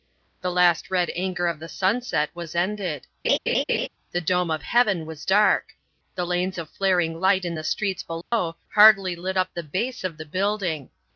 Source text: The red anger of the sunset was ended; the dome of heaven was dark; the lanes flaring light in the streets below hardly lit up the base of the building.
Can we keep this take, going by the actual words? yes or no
no